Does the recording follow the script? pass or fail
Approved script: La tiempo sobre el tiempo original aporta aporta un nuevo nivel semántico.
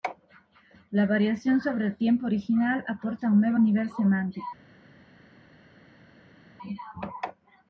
fail